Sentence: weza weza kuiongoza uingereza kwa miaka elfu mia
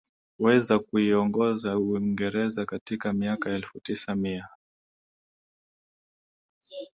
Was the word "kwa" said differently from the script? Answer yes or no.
yes